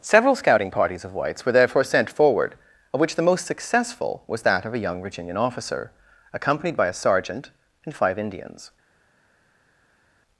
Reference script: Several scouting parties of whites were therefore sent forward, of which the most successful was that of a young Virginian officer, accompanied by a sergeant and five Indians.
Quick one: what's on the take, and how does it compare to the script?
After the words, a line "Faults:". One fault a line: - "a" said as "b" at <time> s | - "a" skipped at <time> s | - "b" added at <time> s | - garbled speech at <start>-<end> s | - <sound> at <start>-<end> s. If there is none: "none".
Several scouting parties of whites were therefore sent forward, of which the most successful was that of a young Virginian officer, accompanied by a sergeant and five Indians.
Faults:
none